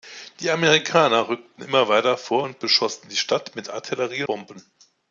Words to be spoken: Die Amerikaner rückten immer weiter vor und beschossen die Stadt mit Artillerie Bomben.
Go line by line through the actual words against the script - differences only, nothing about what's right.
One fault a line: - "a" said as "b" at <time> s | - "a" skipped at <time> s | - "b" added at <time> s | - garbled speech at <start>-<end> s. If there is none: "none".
none